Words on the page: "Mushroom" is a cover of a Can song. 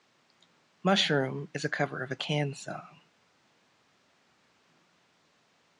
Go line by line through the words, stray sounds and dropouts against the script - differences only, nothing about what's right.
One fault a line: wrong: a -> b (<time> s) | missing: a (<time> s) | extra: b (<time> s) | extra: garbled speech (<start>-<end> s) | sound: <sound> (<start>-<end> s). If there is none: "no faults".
no faults